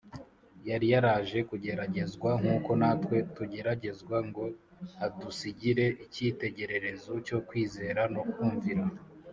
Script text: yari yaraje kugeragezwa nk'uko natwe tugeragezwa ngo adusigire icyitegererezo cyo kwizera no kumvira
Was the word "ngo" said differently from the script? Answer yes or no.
no